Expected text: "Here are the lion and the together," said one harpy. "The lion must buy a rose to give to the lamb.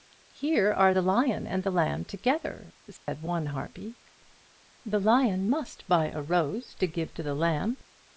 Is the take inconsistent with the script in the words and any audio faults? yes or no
yes